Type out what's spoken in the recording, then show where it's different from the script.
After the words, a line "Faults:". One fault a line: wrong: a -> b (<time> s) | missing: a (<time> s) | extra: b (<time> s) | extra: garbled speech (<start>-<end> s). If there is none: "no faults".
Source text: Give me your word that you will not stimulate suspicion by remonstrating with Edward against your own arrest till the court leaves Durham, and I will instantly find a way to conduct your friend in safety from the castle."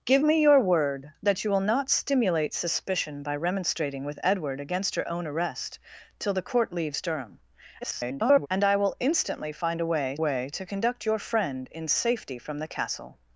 Give me your word that you will not stimulate suspicion by remonstrating with Edward against your own arrest till the court leaves Durham, [garbled] and I will instantly find a way way to conduct your friend in safety from the castle."
Faults:
extra: garbled speech (7.8-8.5 s)
extra: way (10.2 s)